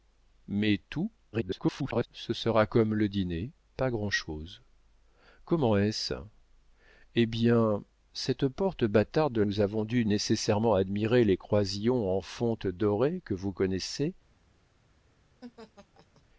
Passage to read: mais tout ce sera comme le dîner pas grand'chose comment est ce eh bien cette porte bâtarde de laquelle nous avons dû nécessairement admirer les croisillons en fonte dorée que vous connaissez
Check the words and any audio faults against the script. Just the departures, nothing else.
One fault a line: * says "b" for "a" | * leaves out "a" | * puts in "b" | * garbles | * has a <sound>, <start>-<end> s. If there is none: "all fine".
* garbles
* leaves out "laquelle"
* has a laugh, 15.4-16.2 s